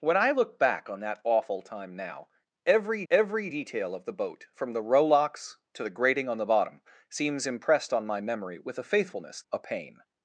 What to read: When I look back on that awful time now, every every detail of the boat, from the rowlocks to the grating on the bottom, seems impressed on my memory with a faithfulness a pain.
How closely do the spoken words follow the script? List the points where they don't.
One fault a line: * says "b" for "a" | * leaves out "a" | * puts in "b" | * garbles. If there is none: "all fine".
all fine